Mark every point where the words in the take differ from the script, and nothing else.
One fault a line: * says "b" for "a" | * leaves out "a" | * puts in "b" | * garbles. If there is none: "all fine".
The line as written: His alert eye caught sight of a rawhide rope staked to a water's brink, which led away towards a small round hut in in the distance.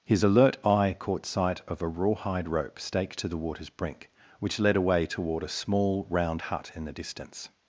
* says "the" for "a"
* says "toward" for "towards"
* leaves out "in"